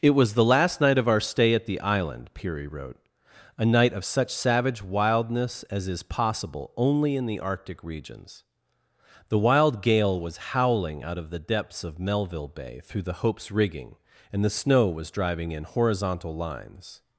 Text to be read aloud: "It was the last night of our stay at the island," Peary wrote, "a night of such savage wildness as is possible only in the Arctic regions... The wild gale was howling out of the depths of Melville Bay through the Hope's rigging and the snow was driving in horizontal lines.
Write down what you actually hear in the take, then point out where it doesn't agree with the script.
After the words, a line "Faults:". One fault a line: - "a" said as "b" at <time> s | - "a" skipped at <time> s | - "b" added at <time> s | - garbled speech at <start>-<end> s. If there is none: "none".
"It was the last night of our stay at the island," Peary wrote, "a night of such savage wildness as is possible only in the Arctic regions... The wild gale was howling out of the depths of Melville Bay through the Hope's rigging and the snow was driving in horizontal lines.
Faults:
none